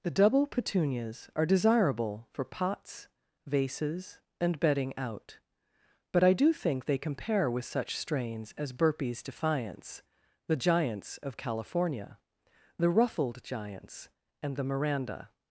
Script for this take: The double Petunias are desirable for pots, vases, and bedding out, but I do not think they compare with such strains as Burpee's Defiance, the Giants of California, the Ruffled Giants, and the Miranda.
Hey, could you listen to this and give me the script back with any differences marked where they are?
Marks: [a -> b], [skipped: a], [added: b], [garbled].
The double Petunias are desirable for pots, vases, and bedding out, but I do [skipped: not] think they compare with such strains as Burpee's Defiance, the Giants of California, the Ruffled Giants, and the Miranda.